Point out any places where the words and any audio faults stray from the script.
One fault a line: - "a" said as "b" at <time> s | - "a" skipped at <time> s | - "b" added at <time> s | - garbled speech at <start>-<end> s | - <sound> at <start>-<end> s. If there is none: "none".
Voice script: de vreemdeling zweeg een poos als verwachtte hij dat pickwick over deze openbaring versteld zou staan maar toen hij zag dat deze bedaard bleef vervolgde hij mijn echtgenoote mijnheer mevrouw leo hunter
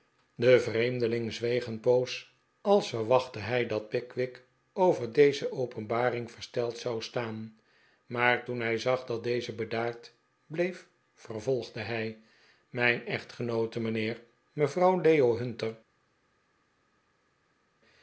none